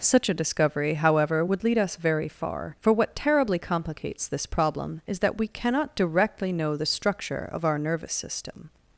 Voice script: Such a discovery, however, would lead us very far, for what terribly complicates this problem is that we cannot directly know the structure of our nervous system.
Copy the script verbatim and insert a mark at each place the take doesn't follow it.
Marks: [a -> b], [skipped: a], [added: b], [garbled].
Such a discovery, however, would lead us very far, for what terribly complicates this problem is that we cannot directly know the structure of our nervous system.